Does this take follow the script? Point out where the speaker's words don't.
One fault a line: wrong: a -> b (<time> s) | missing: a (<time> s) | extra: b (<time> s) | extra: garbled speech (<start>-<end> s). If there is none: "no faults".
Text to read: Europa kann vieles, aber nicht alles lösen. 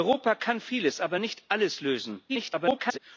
extra: garbled speech (2.3-3.0 s)